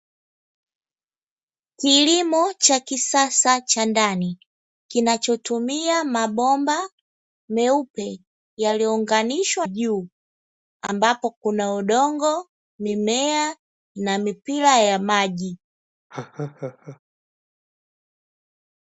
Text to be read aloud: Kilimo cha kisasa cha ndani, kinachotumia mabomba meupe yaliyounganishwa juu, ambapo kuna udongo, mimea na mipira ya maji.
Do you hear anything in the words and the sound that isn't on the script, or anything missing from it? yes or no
yes